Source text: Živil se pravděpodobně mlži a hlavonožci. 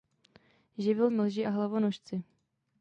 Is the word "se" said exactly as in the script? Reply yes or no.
no